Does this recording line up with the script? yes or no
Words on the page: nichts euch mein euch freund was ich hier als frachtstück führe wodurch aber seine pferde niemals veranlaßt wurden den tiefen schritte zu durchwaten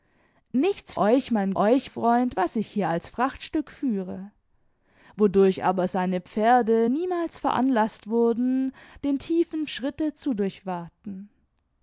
yes